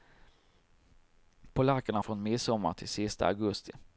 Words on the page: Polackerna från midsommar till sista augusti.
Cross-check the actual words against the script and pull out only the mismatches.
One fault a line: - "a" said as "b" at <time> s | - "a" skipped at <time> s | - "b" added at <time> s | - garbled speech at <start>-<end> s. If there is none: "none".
none